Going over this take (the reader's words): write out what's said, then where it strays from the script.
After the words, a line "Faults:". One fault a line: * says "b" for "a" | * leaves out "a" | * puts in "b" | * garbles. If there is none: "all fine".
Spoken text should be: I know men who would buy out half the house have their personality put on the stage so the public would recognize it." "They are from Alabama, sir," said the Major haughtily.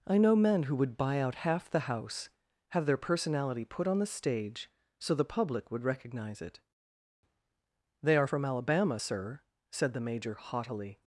I know men who would buy out half the house have their personality put on the stage so the public would recognize it." "They are from Alabama, sir," said the Major haughtily.
Faults:
all fine